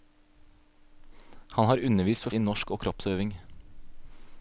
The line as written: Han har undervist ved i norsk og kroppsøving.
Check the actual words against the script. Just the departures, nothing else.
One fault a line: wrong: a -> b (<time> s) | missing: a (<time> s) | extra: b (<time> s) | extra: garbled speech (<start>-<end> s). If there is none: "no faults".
no faults